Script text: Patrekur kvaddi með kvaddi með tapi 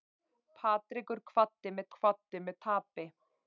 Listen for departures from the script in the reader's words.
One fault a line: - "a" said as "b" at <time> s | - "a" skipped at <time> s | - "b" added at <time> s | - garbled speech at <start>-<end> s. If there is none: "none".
none